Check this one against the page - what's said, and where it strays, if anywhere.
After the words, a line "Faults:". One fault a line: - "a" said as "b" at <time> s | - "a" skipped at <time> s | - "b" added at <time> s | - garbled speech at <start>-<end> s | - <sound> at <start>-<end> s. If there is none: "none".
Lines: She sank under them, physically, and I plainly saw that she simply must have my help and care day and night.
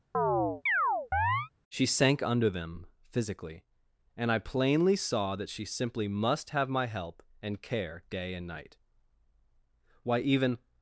She sank under them, physically, and I plainly saw that she simply must have my help and care day and night. Why, even
Faults:
- chirp at 0.1-1.5 s
- "Why even" added at 10.0 s